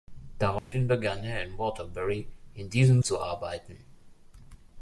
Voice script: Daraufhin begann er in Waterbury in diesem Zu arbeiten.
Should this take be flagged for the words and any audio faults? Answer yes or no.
yes